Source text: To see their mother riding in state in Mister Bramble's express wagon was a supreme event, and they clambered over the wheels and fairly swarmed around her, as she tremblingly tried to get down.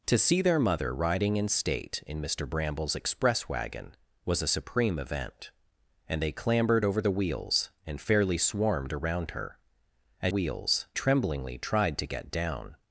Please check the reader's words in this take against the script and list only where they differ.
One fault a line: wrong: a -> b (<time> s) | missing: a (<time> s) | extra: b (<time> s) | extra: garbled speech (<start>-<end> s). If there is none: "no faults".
wrong: she -> wheels (10.3 s)